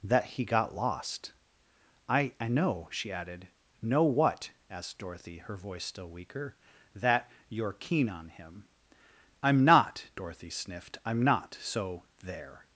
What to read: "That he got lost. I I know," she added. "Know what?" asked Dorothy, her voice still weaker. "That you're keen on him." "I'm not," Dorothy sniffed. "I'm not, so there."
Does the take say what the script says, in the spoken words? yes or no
yes